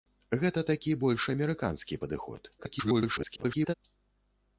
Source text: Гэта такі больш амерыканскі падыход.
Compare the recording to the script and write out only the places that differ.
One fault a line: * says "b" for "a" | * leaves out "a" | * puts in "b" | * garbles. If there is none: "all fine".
* garbles